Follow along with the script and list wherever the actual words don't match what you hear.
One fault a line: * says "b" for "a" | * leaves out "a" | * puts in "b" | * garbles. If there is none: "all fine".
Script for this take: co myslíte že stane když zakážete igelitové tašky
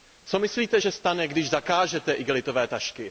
all fine